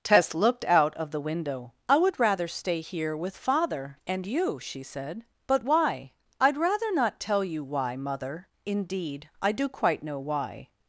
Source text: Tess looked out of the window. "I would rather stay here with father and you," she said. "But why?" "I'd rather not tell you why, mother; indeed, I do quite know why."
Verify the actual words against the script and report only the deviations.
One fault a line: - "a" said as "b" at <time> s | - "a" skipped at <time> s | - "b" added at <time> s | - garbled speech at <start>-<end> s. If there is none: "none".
none